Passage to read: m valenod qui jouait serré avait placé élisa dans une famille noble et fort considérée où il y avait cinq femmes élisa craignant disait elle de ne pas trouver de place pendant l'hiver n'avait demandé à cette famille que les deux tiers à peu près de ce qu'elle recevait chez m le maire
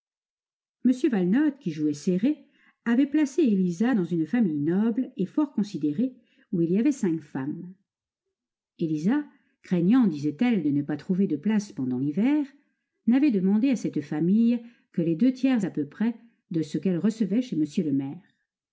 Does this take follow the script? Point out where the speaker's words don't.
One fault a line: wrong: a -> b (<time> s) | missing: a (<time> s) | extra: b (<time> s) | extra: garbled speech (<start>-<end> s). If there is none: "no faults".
no faults